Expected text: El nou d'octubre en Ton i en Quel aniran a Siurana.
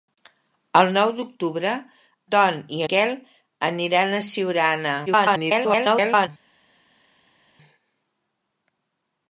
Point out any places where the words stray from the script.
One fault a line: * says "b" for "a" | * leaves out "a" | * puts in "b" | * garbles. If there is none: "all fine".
* leaves out "en"
* leaves out "en"
* garbles